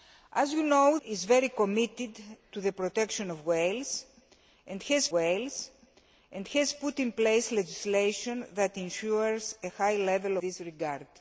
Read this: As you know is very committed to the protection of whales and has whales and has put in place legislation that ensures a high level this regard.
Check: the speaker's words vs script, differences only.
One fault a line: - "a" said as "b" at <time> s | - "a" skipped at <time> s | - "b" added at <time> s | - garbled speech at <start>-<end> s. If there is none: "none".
none